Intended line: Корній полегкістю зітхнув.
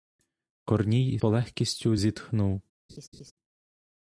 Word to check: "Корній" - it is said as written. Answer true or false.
true